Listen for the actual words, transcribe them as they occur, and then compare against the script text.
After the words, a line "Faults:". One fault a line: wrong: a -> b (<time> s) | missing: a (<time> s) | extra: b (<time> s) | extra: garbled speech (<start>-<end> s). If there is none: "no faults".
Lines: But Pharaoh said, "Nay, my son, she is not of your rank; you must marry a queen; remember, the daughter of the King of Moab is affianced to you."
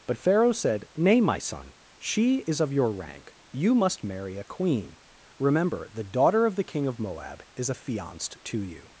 But Pharaoh said, "Nay, my son, she is of your rank; you must marry a queen; remember, the daughter of the King of Moab is affianced to you."
Faults:
missing: not (2.6 s)